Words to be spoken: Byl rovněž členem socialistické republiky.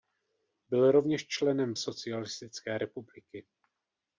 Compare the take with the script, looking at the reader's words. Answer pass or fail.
pass